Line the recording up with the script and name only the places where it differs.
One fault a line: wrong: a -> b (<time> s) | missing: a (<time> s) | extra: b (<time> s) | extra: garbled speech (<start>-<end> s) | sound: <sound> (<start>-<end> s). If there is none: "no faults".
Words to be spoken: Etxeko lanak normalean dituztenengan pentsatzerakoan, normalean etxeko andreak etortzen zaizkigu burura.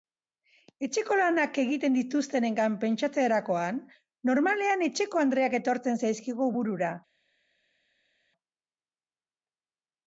wrong: normalean -> egiten (1.6 s)